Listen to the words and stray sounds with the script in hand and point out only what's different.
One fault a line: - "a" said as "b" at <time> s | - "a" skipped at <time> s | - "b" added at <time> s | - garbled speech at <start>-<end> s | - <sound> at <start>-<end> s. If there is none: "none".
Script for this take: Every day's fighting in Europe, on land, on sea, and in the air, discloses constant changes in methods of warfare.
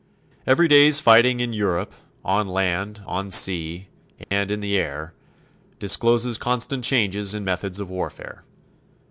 - dropout at 4.2-4.3 s